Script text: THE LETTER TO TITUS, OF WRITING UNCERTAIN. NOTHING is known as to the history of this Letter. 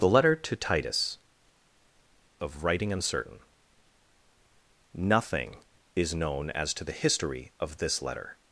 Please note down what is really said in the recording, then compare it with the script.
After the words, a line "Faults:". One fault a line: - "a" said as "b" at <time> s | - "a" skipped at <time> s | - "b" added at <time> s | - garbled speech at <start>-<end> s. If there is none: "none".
THE LETTER TO TITUS, OF WRITING UNCERTAIN. NOTHING is known as to the history of this Letter.
Faults:
none